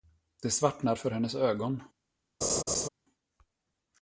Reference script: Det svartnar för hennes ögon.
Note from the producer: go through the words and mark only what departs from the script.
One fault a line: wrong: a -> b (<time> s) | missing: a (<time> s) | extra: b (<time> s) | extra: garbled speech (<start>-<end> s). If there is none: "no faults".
no faults